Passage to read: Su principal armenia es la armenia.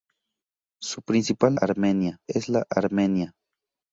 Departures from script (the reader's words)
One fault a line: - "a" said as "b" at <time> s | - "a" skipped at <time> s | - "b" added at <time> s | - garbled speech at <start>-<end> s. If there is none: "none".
none